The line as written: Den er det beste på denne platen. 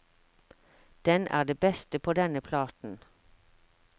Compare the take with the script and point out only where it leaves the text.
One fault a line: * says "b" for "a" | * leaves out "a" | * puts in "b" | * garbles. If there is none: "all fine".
all fine